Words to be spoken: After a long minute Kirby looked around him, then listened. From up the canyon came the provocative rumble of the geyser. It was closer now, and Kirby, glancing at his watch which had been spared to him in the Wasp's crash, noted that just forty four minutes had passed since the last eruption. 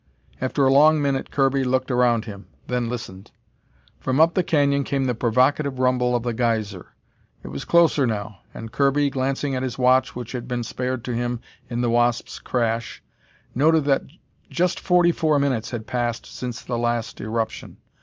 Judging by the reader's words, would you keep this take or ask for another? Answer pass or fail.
pass